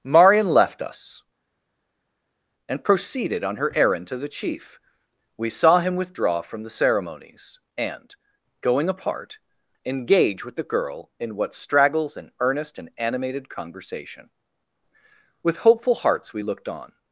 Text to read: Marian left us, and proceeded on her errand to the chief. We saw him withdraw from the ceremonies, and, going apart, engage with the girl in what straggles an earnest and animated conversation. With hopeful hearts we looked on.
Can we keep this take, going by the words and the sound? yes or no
yes